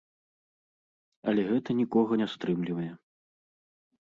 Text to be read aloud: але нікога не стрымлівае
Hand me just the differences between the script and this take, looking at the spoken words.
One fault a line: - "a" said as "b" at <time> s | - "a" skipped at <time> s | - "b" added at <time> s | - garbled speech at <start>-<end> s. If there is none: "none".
- "гэта" added at 1.5 s